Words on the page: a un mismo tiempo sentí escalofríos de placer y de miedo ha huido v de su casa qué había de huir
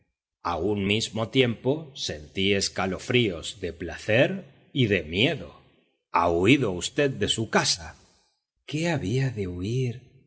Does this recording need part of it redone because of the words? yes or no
no